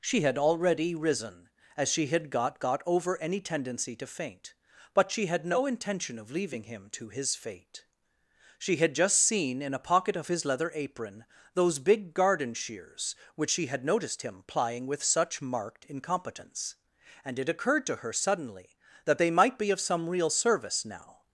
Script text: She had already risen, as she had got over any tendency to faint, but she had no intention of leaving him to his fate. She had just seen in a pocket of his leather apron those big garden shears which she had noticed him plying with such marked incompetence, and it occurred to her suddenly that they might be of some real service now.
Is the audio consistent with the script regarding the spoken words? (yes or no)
no